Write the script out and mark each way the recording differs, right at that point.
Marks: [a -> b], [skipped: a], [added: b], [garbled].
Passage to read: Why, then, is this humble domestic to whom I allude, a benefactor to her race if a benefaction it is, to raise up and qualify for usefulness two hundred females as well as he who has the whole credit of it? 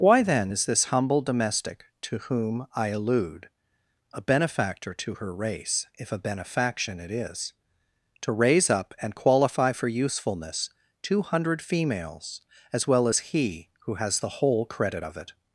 Why, then, is this humble domestic to whom I allude, a benefactor to her race if a benefaction it is, to raise up and qualify for usefulness two hundred females as well as he who has the whole credit of it?